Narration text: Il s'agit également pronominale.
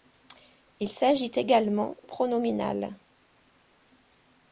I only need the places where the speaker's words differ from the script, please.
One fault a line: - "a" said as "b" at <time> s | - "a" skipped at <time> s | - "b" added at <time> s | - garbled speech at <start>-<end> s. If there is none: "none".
none